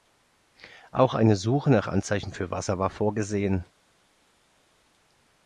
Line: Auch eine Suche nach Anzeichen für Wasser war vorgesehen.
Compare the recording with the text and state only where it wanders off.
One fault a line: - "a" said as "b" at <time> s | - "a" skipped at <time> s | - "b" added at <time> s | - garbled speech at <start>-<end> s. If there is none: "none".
none